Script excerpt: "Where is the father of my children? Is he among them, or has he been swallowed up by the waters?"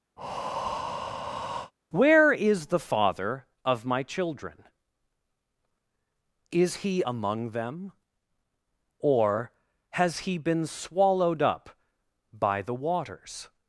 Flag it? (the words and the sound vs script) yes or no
yes